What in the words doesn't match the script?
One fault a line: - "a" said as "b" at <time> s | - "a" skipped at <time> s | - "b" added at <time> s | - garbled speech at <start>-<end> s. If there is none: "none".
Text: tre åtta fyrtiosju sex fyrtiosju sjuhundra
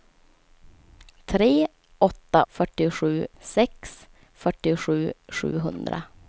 none